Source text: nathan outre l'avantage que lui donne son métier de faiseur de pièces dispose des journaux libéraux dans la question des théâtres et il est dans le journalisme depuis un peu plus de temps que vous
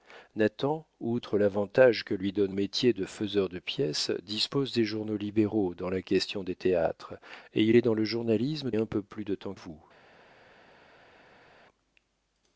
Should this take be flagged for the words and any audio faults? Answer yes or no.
yes